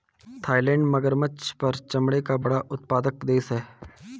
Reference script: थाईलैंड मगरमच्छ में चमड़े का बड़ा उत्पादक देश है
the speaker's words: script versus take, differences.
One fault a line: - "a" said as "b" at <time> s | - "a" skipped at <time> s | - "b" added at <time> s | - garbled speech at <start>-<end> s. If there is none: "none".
- "में" said as "पर" at 1.6 s